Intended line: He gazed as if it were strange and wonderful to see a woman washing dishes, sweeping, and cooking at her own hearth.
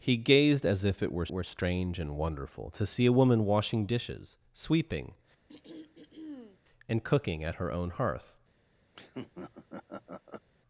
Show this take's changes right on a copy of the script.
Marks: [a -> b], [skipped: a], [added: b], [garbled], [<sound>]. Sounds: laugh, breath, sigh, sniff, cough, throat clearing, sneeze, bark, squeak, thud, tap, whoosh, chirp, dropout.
He gazed as if it were [added: were] strange and wonderful to see a woman washing dishes, sweeping, [throat clearing] and cooking at her own hearth. [laugh]